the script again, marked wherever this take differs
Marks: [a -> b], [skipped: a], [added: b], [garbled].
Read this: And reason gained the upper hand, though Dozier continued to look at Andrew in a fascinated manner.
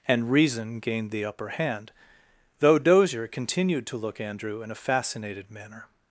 And reason gained the upper hand, though Dozier continued to look [skipped: at] Andrew in a fascinated manner.